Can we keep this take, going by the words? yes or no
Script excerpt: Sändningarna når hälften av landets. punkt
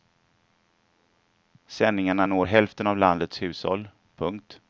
no